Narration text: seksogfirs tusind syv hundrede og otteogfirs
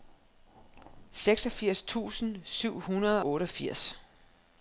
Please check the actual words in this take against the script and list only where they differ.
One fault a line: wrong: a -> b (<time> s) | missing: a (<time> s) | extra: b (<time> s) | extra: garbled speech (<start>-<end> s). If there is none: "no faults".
missing: og (3.2 s)